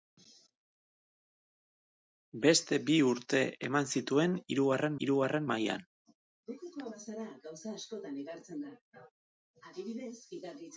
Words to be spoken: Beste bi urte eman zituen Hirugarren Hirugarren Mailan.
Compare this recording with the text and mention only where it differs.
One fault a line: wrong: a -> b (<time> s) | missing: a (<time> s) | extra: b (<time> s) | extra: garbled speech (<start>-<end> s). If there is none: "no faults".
no faults